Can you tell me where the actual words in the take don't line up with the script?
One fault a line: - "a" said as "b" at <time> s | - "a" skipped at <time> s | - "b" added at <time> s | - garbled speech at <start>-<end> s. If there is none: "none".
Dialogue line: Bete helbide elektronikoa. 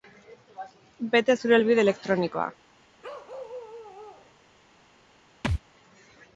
- "zure" added at 1.4 s